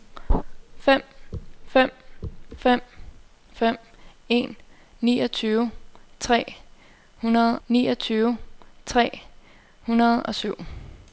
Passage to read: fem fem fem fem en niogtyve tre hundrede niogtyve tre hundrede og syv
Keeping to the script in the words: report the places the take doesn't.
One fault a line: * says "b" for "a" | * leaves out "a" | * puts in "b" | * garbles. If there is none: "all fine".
all fine